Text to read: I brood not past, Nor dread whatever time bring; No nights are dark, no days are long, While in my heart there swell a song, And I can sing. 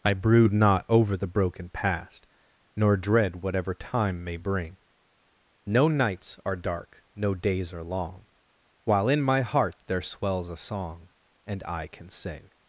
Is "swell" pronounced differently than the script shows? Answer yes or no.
yes